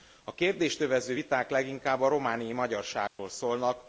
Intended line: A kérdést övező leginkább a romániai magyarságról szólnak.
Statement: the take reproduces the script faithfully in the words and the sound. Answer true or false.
false